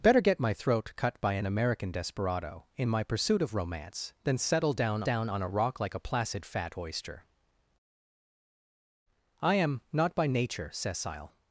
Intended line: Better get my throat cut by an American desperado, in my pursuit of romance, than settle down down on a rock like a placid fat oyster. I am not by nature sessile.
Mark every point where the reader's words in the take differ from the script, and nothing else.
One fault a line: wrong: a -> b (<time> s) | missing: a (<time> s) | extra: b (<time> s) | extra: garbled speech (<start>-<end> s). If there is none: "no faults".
no faults